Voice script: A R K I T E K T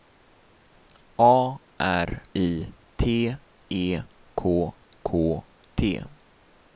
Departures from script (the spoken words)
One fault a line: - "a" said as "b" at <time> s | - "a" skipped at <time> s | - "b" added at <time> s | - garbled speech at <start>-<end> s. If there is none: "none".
- "K" skipped at 2.2 s
- "K" added at 5.0 s